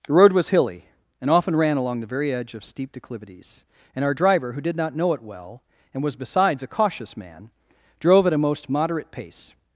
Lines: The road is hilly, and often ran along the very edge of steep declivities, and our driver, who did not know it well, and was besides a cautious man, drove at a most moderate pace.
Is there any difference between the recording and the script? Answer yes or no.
yes